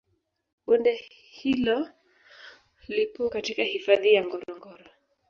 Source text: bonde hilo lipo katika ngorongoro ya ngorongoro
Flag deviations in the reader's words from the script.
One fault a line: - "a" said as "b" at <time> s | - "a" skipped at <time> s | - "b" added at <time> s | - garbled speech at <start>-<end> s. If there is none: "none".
- "ngorongoro" said as "hifadhi" at 3.6 s